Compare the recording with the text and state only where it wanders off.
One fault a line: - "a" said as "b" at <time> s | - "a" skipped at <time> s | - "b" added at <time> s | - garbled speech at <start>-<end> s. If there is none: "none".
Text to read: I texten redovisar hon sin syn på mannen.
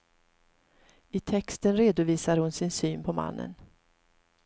none